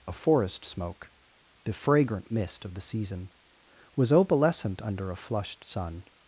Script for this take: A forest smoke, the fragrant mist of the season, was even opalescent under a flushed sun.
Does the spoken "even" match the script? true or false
false